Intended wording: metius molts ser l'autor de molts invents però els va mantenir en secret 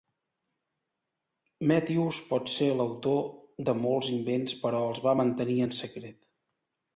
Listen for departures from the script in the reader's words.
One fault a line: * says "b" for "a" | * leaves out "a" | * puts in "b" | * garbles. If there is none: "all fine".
* says "pot" for "molts"